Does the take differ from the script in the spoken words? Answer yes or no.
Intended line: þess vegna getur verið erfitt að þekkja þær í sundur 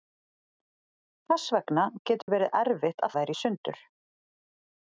yes